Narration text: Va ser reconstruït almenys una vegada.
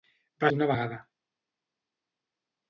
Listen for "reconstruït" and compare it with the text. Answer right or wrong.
wrong